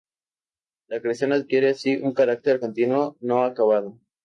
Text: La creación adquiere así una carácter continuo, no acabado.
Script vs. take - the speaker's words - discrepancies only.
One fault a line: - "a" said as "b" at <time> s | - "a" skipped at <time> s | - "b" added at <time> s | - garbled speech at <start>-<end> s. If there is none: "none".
- "una" said as "un" at 2.0 s